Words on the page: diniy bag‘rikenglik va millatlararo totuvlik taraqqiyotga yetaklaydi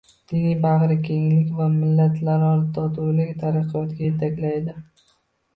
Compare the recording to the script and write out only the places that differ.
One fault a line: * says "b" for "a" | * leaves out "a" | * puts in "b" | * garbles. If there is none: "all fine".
all fine